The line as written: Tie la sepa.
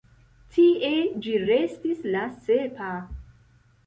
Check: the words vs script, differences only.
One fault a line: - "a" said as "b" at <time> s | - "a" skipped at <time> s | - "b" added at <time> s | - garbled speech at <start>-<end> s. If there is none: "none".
- "ĝi restis" added at 1.2 s